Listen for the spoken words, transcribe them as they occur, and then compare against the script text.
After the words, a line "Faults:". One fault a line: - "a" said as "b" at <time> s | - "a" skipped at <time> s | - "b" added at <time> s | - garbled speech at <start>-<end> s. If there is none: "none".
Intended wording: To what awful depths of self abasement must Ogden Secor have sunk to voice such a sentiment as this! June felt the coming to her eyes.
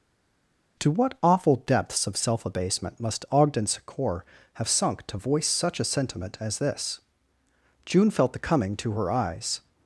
To what awful depths of self abasement must Ogden Secor have sunk to voice such a sentiment as this! June felt the coming to her eyes.
Faults:
none